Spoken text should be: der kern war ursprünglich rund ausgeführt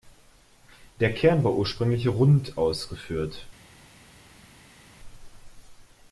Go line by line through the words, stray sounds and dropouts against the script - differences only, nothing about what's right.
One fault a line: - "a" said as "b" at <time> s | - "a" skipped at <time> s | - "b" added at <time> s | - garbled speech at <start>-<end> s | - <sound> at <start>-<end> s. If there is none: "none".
none